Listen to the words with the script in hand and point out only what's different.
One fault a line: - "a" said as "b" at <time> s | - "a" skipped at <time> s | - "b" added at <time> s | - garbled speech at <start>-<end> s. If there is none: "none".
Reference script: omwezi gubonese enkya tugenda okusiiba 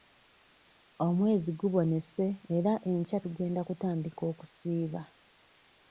- "era" added at 2.6 s
- "kutandika" added at 3.7 s